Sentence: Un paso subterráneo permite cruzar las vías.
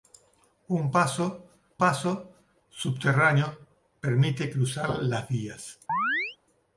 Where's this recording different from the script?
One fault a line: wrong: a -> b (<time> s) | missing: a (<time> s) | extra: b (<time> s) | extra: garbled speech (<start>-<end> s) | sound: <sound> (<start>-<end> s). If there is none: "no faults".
extra: paso (1.8 s)
sound: chirp (5.9-6.4 s)